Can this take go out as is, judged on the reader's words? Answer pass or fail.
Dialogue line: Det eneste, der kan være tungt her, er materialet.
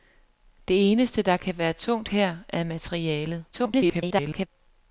fail